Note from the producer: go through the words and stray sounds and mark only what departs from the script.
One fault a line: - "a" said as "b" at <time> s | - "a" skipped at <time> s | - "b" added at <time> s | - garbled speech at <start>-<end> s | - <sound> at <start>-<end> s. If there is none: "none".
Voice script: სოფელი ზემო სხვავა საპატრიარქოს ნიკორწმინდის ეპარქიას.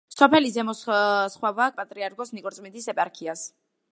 none